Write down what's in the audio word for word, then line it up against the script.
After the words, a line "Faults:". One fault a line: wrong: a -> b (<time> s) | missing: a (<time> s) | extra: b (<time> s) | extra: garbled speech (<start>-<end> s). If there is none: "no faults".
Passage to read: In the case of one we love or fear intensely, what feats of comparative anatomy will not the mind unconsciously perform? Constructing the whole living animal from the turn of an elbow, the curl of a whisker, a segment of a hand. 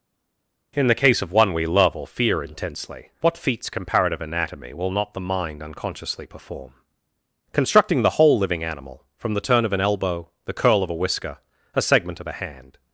In the case of one we love or fear intensely, what feats comparative anatomy will not the mind unconsciously perform? Constructing the whole living animal from the turn of an elbow, the curl of a whisker, a segment of a hand.
Faults:
missing: of (3.7 s)